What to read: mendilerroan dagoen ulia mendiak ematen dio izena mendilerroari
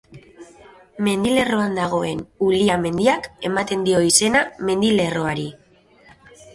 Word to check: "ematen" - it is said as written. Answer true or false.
true